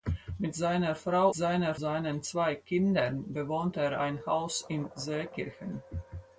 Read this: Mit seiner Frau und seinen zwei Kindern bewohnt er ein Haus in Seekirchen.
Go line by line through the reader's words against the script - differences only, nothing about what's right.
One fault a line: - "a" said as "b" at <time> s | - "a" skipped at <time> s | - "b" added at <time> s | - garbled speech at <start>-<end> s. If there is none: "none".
- "und" said as "seiner" at 1.3 s